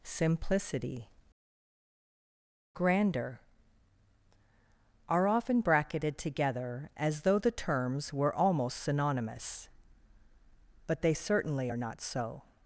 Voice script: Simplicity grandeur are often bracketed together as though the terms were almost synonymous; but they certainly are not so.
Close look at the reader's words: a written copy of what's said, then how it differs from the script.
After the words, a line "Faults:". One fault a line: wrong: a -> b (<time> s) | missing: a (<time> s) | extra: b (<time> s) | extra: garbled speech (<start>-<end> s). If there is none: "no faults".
Simplicity grandeur are often bracketed together as though the terms were almost synonymous; but they certainly are not so.
Faults:
no faults